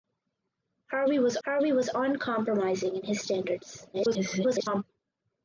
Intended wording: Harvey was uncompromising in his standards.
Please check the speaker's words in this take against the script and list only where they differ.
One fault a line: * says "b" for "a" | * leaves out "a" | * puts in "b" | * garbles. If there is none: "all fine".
* puts in "harvey was"
* garbles